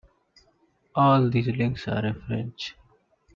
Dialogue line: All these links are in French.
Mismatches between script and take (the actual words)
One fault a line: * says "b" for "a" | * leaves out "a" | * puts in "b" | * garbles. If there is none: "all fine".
all fine